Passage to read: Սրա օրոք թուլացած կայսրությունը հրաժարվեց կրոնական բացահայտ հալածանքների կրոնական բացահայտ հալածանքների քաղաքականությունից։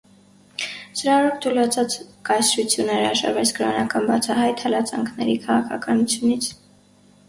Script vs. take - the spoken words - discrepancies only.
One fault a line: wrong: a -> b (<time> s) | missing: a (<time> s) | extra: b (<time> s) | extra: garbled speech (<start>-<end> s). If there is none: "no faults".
missing: կրոնական բացահայտ հալածանքների (5.4 s)